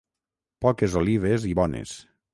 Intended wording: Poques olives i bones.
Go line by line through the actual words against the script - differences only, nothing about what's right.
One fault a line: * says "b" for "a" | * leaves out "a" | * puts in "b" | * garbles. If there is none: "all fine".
all fine